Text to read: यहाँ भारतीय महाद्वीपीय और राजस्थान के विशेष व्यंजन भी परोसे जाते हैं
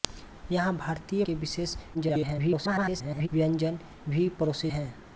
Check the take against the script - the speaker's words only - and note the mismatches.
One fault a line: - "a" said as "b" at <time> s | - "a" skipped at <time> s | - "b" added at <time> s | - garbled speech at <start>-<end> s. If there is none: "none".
- "महाद्वीपीय और राजस्थान" skipped at 1.2 s
- garbled speech at 1.9-3.3 s
- "जाते" skipped at 4.7 s